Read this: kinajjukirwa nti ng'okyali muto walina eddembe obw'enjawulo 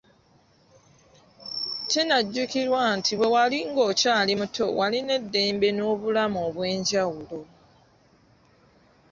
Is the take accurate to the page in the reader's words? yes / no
no